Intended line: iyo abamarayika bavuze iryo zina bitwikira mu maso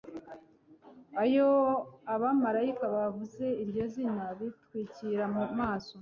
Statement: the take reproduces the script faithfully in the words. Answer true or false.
true